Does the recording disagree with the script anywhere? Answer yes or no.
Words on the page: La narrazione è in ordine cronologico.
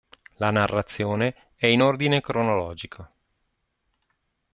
no